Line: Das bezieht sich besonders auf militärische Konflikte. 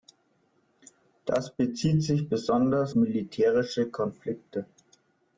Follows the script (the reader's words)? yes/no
no